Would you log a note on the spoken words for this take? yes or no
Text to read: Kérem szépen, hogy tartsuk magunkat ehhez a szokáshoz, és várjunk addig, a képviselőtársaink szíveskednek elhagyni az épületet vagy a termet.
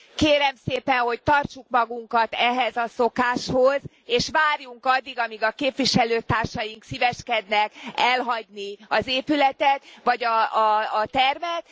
yes